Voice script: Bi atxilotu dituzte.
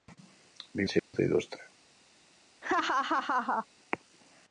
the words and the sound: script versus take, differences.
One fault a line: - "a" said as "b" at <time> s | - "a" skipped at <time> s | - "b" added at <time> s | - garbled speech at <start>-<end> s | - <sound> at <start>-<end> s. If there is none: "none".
- dropout at 1.0-1.1 s
- laugh at 2.6-3.7 s